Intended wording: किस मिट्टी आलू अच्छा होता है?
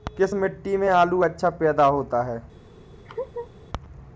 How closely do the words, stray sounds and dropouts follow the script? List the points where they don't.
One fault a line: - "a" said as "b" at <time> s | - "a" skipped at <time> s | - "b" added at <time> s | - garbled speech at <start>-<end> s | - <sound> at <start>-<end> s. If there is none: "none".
- "में" added at 0.8 s
- "पैदा" added at 1.5 s
- laugh at 3.0-3.5 s